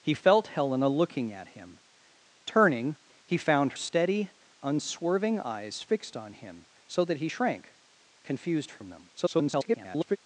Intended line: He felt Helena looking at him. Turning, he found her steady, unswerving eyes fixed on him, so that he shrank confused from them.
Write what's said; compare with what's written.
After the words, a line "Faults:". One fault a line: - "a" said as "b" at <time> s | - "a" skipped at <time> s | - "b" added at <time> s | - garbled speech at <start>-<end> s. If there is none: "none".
He felt Helena looking at him. Turning, he found steady, unswerving eyes fixed on him, so that he shrank confused from them. [garbled]
Faults:
- "her" skipped at 3.7 s
- garbled speech at 9.2-10.2 s